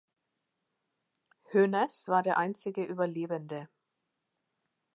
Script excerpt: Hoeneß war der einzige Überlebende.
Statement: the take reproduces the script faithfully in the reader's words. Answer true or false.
true